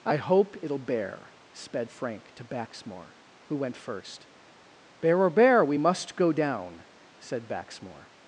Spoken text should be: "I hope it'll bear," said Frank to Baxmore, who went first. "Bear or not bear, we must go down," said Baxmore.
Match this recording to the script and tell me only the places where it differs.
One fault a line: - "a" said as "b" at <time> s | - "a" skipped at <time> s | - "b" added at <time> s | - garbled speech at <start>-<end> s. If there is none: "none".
- "said" said as "sped" at 1.5 s
- "not" skipped at 5.3 s